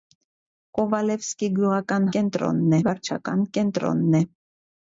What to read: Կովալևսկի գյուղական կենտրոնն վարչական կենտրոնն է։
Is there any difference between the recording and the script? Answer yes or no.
no